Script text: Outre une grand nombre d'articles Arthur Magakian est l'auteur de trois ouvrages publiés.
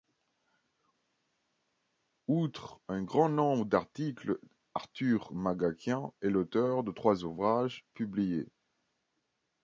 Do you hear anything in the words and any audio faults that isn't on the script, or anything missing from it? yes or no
yes